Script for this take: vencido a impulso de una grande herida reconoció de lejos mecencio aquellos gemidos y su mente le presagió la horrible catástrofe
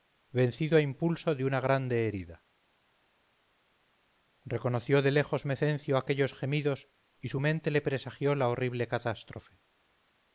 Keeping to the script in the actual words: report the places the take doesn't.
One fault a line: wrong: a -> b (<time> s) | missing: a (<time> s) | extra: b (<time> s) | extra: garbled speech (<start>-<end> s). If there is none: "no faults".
no faults